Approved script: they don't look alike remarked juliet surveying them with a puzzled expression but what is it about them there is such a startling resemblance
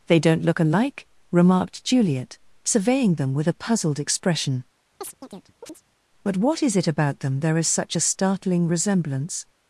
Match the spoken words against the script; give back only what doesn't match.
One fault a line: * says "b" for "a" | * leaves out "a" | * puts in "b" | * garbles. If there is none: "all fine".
all fine